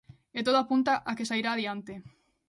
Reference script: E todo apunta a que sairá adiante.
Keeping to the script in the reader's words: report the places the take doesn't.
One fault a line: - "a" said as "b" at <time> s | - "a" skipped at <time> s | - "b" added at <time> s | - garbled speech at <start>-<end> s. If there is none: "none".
none